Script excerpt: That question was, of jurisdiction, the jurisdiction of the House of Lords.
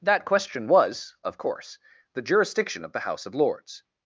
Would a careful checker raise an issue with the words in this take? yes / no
yes